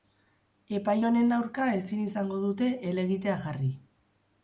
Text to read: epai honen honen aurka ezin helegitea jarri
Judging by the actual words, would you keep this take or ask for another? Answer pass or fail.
fail